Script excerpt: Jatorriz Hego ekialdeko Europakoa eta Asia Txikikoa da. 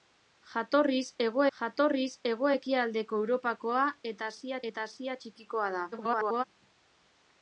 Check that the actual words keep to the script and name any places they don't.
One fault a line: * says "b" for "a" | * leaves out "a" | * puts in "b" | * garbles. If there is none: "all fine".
* puts in "jatorriz Hego"
* puts in "eta Asia"
* garbles